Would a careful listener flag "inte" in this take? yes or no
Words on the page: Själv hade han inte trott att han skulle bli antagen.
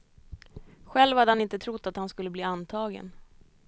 no